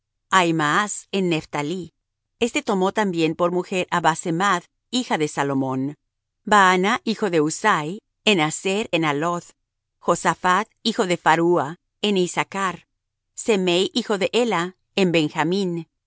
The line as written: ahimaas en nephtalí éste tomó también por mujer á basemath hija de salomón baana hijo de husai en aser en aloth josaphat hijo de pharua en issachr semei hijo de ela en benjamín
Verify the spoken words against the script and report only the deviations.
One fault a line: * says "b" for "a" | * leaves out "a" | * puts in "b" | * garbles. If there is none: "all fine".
all fine